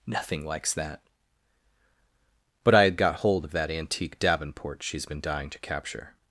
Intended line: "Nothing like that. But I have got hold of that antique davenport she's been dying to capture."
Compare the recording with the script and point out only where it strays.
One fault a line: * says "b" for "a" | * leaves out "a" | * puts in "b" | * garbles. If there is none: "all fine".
* says "likes" for "like"
* says "had" for "have"